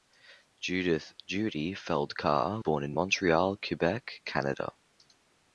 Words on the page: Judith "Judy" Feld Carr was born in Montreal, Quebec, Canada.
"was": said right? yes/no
no